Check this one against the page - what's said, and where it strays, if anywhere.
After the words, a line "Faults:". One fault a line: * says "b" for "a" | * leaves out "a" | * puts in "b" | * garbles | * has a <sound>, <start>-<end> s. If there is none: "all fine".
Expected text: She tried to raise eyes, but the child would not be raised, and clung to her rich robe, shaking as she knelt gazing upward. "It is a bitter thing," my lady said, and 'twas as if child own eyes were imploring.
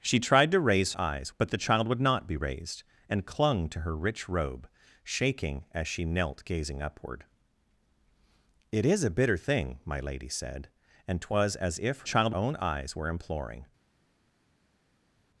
She tried to raise eyes, but the child would not be raised, and clung to her rich robe, shaking as she knelt gazing upward. "It is a bitter thing," my lady said, and 'twas as if child own eyes were imploring.
Faults:
all fine